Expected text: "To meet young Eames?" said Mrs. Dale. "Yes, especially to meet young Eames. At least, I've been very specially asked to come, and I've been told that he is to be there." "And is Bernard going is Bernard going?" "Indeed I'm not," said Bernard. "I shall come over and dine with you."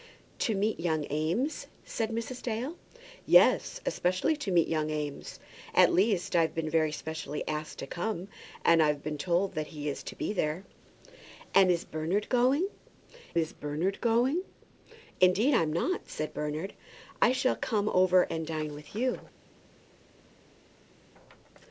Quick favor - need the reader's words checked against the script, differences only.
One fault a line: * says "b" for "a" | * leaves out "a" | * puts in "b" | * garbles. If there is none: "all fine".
all fine